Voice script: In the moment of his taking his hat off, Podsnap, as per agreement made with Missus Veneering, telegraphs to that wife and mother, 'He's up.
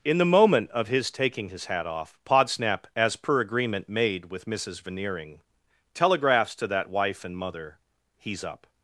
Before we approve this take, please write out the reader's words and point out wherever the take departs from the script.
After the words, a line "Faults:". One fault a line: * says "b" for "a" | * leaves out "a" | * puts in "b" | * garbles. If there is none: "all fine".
In the moment of his taking his hat off, Podsnap, as per agreement made with Missus Veneering, telegraphs to that wife and mother, 'He's up.
Faults:
all fine